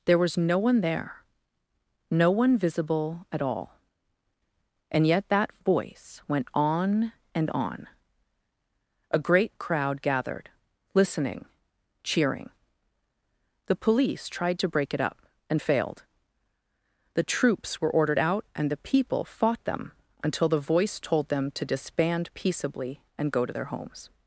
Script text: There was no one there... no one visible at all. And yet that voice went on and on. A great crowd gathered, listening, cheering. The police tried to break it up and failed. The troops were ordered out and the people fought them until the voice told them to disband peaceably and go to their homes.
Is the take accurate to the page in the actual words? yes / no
yes